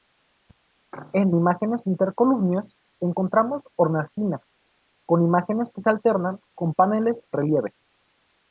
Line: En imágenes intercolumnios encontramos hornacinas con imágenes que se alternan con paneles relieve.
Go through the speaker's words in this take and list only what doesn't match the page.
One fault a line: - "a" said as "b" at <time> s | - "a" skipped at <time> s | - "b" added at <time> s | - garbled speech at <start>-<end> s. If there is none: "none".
none